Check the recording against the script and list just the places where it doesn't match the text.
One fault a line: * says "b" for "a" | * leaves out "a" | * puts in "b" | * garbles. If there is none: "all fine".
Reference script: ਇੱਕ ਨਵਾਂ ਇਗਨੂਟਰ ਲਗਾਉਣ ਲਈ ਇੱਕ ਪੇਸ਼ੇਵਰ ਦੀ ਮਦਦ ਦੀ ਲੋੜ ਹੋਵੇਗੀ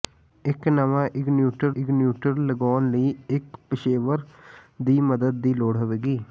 * puts in "ਇਗਨੂਟਰ"